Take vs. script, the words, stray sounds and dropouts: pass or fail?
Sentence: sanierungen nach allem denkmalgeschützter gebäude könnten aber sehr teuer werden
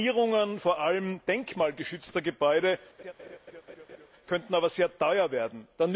fail